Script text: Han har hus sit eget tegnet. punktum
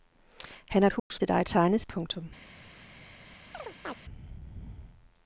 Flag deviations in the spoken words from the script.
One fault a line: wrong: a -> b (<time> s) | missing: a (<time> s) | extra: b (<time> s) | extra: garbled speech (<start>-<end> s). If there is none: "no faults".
no faults